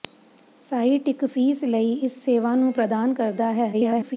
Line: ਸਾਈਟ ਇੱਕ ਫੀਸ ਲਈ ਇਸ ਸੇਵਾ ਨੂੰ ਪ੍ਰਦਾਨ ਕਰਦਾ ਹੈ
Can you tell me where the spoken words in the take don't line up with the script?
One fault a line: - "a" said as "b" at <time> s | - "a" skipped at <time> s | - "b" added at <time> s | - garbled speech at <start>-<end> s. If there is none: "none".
- garbled speech at 3.7-4.2 s